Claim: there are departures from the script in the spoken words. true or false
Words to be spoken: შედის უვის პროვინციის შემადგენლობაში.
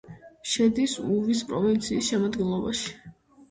false